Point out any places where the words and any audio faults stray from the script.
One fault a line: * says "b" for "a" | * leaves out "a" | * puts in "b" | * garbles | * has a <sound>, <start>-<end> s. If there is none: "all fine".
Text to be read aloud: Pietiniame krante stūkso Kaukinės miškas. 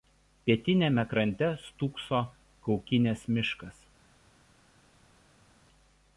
all fine